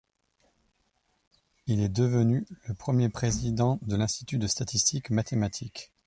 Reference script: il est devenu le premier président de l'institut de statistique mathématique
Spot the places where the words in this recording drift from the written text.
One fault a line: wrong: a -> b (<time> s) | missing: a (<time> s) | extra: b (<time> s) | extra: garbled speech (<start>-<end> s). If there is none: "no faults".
no faults